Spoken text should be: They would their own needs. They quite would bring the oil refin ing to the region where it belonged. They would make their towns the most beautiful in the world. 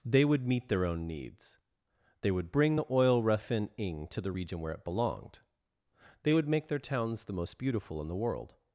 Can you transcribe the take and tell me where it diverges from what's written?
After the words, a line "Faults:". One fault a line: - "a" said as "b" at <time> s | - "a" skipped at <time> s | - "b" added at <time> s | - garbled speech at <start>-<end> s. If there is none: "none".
They would meet their own needs. They would bring the oil refin ing to the region where it belonged. They would make their towns the most beautiful in the world.
Faults:
- "meet" added at 0.5 s
- "quite" skipped at 2.3 s